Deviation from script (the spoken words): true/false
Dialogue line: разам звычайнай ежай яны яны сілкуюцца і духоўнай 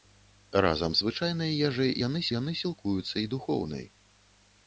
false